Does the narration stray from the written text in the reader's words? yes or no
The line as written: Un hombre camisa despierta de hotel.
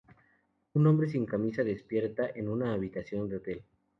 yes